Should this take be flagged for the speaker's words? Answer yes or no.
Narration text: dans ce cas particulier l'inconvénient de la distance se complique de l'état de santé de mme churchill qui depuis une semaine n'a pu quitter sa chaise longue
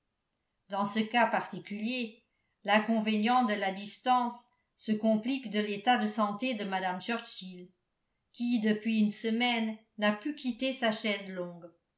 no